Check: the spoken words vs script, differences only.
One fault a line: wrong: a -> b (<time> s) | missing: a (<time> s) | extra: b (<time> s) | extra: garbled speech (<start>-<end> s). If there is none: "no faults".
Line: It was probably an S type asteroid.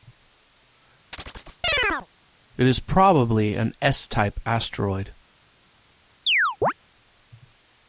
wrong: was -> is (2.7 s)